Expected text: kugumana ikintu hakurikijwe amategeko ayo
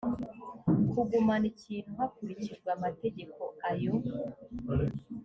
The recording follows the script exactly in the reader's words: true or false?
true